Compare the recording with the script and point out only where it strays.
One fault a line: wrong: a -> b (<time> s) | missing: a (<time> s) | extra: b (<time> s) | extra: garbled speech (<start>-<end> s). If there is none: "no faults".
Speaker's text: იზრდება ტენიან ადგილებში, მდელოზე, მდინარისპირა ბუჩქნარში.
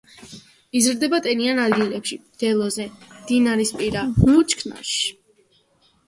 no faults